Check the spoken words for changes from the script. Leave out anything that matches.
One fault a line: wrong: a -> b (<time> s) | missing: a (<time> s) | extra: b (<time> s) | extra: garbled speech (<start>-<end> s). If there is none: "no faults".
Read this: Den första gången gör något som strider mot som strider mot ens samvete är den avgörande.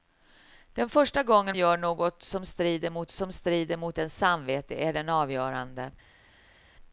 no faults